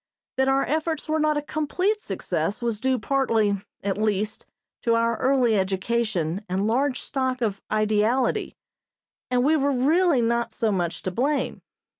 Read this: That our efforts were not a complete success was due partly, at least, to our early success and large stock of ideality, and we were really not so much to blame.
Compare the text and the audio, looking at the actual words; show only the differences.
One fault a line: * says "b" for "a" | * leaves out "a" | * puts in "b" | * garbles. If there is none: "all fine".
* says "education" for "success"